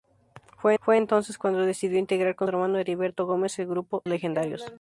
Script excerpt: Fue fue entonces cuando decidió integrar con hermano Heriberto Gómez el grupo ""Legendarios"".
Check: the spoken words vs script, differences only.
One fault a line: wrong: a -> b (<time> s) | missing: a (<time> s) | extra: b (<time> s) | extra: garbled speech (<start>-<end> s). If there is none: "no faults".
no faults